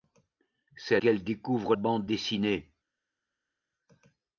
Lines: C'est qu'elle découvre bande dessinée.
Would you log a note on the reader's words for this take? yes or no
no